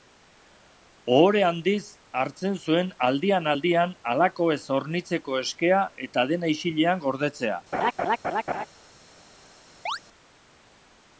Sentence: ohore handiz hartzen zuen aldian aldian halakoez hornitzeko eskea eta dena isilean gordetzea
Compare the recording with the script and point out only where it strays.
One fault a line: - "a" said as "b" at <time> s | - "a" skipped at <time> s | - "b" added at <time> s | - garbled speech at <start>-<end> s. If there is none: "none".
none